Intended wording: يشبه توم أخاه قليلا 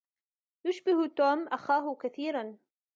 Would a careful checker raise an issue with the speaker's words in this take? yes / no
yes